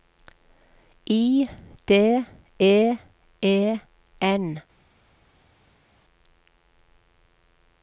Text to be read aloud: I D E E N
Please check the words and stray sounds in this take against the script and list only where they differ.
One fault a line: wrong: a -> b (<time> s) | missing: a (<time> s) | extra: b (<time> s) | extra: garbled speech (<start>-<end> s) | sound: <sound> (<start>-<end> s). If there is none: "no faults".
no faults